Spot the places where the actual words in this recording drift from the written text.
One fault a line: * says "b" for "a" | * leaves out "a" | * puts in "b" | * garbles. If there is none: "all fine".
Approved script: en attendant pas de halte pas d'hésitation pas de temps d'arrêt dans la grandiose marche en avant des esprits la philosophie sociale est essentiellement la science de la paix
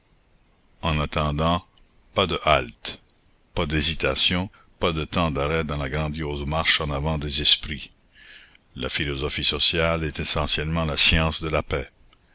all fine